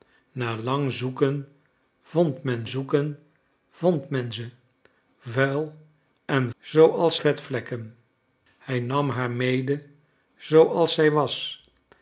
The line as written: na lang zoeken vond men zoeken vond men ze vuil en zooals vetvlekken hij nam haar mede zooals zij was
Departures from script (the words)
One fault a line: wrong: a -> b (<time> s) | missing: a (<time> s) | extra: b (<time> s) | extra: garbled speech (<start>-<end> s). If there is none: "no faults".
no faults